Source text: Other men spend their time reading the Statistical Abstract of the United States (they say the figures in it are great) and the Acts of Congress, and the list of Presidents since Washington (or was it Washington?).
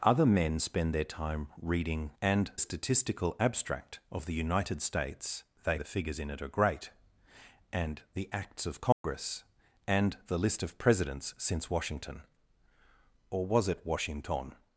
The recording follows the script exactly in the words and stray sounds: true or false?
false